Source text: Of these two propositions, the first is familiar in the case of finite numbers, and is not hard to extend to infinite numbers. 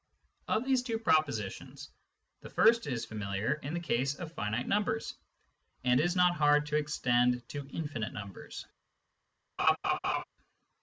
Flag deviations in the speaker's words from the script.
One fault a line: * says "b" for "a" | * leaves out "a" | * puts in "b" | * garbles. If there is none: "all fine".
all fine